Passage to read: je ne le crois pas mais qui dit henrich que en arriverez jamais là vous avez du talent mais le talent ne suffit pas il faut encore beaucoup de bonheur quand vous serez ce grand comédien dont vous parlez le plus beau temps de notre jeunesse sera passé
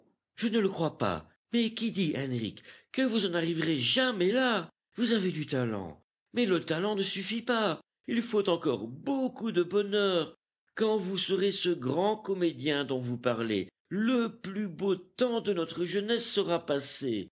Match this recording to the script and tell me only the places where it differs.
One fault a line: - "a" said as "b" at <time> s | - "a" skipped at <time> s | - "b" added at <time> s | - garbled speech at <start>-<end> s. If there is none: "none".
- "vous" added at 3.0 s